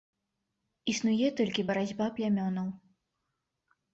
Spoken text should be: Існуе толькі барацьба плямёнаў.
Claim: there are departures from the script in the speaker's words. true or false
false